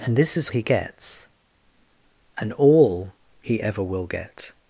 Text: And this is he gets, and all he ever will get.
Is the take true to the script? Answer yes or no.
yes